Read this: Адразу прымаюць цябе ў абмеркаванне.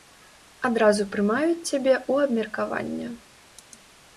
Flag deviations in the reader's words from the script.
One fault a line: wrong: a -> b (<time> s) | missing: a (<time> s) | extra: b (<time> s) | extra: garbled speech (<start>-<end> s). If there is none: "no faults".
no faults